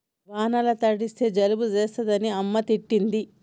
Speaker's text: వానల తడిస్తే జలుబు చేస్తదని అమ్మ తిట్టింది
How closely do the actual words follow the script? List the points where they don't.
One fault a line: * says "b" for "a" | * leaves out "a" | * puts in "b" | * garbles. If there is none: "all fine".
all fine